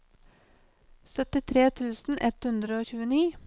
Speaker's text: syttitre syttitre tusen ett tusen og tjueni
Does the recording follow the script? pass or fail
fail